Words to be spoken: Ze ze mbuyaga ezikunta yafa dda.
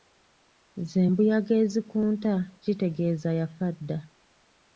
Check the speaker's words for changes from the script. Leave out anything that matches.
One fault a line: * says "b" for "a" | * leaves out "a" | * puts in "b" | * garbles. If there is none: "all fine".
* leaves out "ze"
* puts in "kitegeeza"